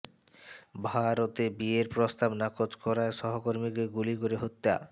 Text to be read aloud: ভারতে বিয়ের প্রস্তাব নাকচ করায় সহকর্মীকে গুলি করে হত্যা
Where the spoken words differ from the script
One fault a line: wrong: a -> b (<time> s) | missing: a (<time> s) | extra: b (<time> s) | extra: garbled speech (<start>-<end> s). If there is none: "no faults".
no faults